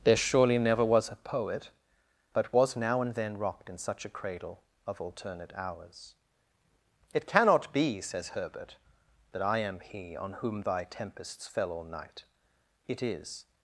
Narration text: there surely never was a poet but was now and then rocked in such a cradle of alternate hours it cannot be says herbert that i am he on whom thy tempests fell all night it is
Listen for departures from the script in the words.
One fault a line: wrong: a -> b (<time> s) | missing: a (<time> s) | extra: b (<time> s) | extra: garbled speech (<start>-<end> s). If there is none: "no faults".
no faults